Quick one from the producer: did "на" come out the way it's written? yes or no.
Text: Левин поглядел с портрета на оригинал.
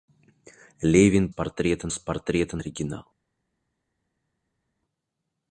no